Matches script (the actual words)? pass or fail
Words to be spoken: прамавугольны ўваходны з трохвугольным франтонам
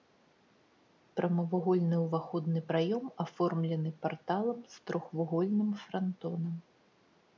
fail